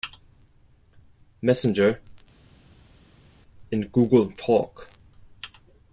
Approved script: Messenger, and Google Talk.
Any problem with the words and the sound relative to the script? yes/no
no